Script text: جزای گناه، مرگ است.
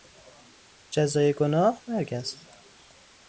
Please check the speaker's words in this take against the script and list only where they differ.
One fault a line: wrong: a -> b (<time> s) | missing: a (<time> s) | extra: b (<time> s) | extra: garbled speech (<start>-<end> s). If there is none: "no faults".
no faults